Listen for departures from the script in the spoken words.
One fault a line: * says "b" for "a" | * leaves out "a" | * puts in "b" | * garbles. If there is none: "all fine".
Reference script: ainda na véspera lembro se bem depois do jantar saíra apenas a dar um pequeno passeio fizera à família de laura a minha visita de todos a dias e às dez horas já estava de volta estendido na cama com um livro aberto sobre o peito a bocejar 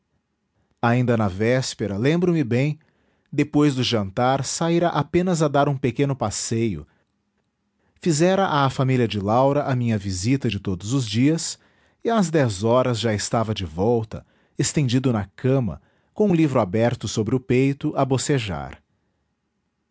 * says "me" for "se"
* says "os" for "a"